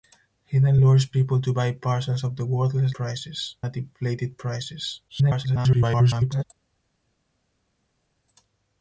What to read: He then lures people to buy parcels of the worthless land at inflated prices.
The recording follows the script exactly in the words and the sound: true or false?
false